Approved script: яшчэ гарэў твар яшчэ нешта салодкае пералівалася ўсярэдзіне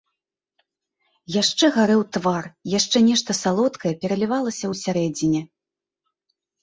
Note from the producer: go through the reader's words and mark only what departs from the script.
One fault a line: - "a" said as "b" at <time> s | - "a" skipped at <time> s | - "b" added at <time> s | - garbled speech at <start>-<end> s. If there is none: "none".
none